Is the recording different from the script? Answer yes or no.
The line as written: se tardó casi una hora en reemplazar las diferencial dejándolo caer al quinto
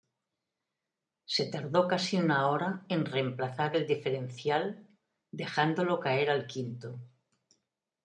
yes